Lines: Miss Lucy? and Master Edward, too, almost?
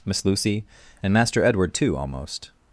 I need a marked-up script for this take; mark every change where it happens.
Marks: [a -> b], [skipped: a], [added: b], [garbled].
Miss Lucy? and Master Edward, too, almost?